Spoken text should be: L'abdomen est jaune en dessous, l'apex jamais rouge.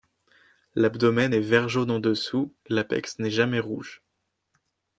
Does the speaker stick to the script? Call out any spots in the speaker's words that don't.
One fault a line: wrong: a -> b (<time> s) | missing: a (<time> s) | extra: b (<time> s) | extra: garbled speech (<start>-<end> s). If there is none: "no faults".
extra: vert (1.4 s)
extra: n'est (3.2 s)